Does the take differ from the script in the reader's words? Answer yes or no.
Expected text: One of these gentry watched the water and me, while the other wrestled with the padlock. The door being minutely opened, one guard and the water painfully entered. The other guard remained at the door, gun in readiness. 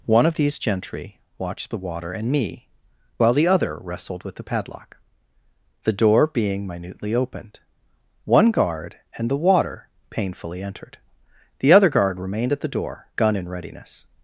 no